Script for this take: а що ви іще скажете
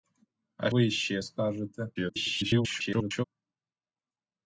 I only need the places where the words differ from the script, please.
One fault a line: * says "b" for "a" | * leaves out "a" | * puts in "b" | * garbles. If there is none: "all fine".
* leaves out "що"
* garbles